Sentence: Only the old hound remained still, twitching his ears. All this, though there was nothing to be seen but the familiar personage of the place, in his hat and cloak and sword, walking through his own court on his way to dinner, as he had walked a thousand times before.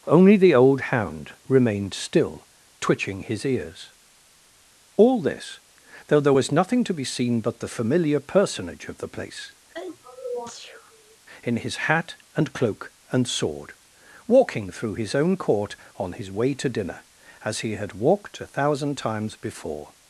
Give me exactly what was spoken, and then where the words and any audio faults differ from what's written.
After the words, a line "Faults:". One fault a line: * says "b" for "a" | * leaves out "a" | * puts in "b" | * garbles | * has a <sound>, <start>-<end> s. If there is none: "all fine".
Only the old hound remained still, twitching his ears. All this, though there was nothing to be seen but the familiar personage of the place, in his hat and cloak and sword, walking through his own court on his way to dinner, as he had walked a thousand times before.
Faults:
* has a sneeze, 9.7-11.2 s